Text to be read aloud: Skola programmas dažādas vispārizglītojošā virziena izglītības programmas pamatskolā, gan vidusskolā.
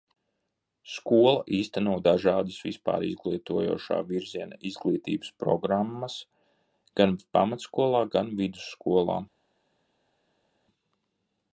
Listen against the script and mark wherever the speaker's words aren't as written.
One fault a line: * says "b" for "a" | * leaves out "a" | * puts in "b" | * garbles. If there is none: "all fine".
* says "īsteno" for "programmas"
* puts in "gan"